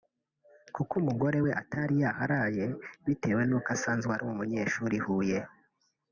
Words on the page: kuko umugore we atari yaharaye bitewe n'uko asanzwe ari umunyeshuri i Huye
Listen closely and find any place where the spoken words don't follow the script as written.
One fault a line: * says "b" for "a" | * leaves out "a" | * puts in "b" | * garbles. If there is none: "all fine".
all fine